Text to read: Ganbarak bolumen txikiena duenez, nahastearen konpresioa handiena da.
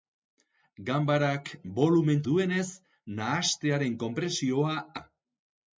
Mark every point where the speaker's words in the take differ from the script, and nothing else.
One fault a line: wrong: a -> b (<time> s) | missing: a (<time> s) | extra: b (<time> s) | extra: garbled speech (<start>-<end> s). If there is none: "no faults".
missing: txikiena (2.2 s)
missing: handiena (4.8 s)